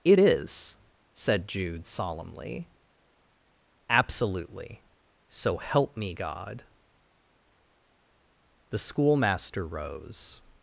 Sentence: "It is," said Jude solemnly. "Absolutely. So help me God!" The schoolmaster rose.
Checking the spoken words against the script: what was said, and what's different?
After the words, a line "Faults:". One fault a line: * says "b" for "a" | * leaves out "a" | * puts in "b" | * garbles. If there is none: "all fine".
"It is," said Jude solemnly. "Absolutely. So help me God!" The schoolmaster rose.
Faults:
all fine